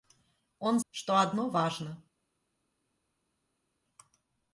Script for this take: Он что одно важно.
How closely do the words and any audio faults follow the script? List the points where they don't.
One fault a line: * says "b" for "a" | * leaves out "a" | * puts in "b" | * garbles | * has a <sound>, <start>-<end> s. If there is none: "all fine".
all fine